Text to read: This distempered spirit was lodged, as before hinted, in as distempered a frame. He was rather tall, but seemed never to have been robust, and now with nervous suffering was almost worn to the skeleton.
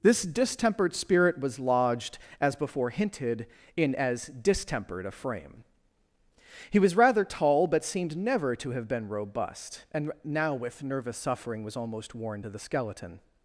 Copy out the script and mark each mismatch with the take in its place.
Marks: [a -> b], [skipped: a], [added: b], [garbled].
This distempered spirit was lodged, as before hinted, in as distempered a frame. He was rather tall, but seemed never to have been robust, and now with nervous suffering was almost worn to the skeleton.